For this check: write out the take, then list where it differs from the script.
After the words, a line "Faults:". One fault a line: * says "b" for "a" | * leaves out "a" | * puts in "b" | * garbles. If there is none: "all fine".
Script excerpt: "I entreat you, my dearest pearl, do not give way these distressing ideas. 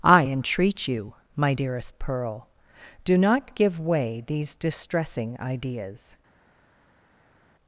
"I entreat you, my dearest pearl, do not give way these distressing ideas.
Faults:
all fine